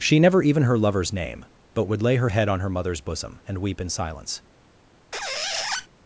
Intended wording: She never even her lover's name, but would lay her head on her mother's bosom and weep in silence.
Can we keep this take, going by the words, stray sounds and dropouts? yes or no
no